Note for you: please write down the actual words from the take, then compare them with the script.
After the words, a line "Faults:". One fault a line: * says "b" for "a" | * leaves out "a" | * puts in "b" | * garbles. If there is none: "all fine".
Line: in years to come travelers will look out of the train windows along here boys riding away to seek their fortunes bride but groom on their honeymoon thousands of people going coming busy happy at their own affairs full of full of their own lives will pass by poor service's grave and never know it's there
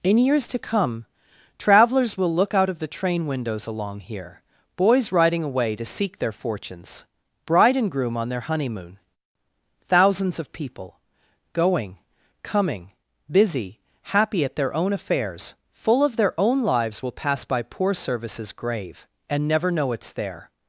in years to come travelers will look out of the train windows along here boys riding away to seek their fortunes bride and groom on their honeymoon thousands of people going coming busy happy at their own affairs full of their own lives will pass by poor service's grave and never know it's there
Faults:
* says "and" for "but"
* leaves out "full of"